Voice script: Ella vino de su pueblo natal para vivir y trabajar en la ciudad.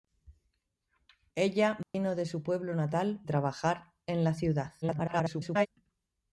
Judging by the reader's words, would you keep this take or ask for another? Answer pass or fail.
fail